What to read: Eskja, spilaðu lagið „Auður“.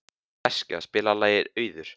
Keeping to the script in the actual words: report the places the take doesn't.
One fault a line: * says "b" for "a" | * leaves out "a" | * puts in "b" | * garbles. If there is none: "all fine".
all fine